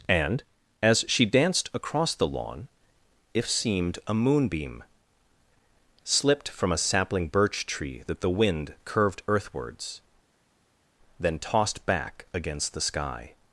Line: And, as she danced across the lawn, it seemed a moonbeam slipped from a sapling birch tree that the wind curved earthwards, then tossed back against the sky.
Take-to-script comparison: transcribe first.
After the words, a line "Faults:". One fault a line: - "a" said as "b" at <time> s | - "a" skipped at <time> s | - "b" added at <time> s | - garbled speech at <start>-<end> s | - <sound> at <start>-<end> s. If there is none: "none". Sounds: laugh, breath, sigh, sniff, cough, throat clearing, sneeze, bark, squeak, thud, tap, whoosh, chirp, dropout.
And, as she danced across the lawn, if seemed a moonbeam slipped from a sapling birch tree that the wind curved earthwards, then tossed back against the sky.
Faults:
- "it" said as "if" at 3.3 s